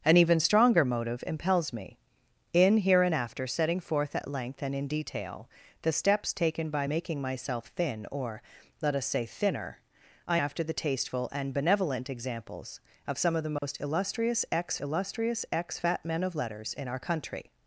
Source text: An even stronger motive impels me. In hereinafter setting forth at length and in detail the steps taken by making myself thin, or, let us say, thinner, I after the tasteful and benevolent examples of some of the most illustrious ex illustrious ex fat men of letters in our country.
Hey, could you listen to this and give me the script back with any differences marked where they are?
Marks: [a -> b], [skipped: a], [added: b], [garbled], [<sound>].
An even stronger motive impels me. In hereinafter setting forth at length and in detail the steps taken by making myself thin, or, let us say, thinner, I after the tasteful and benevolent examples of some of the most [dropout] illustrious ex illustrious ex fat men of letters in our country.